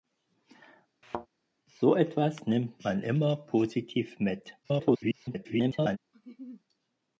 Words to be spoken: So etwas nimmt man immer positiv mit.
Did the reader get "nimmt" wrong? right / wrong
right